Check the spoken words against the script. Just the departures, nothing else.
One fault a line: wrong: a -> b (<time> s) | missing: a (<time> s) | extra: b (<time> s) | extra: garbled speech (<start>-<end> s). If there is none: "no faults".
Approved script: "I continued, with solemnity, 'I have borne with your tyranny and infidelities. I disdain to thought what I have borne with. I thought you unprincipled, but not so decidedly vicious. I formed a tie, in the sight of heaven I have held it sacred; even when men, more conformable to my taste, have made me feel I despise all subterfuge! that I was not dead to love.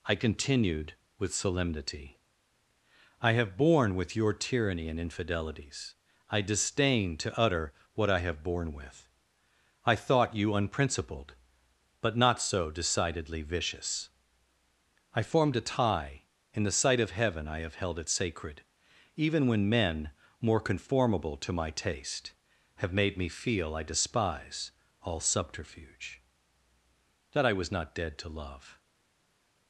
wrong: thought -> utter (7.4 s)